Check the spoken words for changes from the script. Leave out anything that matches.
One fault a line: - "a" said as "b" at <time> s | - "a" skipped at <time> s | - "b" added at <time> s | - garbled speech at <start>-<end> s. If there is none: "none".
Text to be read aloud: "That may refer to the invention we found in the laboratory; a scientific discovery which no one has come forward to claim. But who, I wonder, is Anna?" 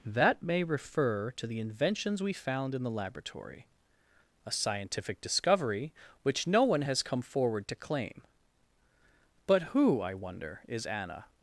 - "invention" said as "inventions" at 1.6 s